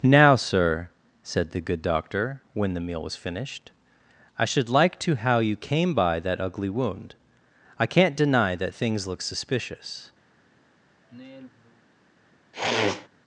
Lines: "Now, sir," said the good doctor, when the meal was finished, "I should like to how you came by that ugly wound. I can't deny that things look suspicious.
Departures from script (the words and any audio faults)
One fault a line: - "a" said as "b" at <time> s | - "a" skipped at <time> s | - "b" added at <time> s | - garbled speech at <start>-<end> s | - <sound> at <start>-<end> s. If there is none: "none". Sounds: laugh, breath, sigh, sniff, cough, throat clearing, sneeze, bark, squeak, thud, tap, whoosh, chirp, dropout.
- sigh at 11.0-11.9 s
- sniff at 12.5-13.1 s